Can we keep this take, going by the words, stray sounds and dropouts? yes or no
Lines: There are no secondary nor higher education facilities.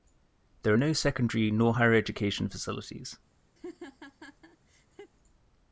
no